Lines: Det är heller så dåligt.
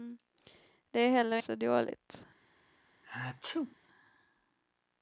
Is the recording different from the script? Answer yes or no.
no